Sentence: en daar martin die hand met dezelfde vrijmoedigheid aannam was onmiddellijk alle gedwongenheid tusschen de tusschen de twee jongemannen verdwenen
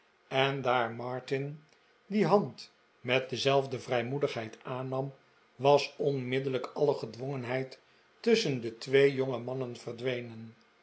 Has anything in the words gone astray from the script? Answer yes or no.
yes